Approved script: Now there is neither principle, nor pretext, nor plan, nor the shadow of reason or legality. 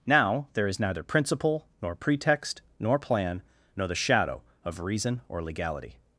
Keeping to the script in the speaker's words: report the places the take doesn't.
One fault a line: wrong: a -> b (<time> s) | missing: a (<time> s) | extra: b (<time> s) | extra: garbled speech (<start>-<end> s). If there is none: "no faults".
no faults